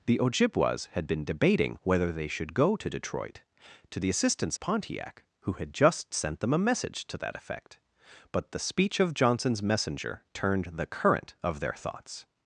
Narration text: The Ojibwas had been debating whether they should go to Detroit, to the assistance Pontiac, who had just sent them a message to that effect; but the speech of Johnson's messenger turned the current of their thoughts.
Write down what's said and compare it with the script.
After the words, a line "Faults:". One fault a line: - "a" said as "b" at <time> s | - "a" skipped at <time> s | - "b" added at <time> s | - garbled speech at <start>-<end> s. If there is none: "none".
The Ojibwas had been debating whether they should go to Detroit, to the assistance Pontiac, who had just sent them a message to that effect; but the speech of Johnson's messenger turned the current of their thoughts.
Faults:
none